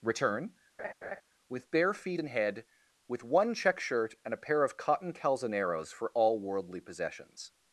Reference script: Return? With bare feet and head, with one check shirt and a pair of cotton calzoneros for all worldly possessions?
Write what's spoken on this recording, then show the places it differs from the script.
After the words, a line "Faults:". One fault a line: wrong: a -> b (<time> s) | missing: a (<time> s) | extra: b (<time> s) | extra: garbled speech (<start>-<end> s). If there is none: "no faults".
Return? With bare feet and head, with one check shirt and a pair of cotton calzoneros for all worldly possessions?
Faults:
no faults